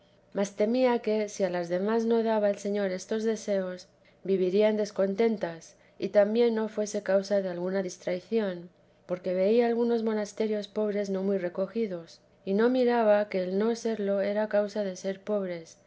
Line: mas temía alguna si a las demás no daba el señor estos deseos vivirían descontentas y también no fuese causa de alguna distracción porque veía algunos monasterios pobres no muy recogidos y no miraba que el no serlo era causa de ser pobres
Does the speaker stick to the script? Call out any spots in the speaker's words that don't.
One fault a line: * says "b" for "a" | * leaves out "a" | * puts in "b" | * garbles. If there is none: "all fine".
* says "que" for "alguna"